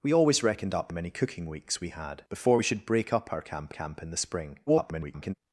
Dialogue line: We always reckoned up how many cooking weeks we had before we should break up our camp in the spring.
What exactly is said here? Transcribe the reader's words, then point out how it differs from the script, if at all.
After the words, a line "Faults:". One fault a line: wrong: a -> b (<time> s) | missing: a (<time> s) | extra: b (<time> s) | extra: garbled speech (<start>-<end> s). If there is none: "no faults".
We always reckoned up many cooking weeks we had before we should break up our camp camp in the spring. [garbled]
Faults:
missing: how (0.9 s)
extra: camp (3.7 s)
extra: garbled speech (4.7-5.3 s)